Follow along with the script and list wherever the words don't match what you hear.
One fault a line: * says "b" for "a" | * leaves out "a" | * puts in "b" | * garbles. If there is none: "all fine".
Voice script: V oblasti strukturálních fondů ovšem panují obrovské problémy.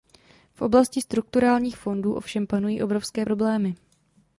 all fine